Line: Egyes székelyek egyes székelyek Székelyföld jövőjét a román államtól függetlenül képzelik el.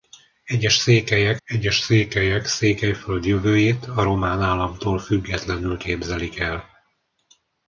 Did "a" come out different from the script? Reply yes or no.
no